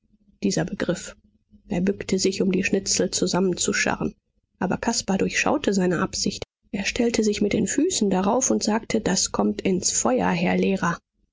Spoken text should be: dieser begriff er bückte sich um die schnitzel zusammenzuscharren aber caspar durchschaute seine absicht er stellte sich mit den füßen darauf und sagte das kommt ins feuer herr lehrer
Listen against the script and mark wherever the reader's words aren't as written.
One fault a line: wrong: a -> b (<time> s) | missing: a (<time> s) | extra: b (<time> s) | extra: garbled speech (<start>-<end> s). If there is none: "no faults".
no faults